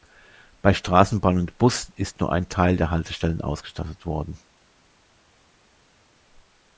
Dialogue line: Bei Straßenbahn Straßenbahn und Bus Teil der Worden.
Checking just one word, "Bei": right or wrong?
right